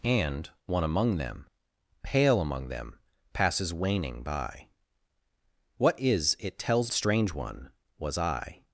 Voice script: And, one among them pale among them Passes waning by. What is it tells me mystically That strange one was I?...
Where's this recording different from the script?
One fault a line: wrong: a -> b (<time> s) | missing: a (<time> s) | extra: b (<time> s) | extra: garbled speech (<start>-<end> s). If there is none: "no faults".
missing: me mystically That (6.9 s)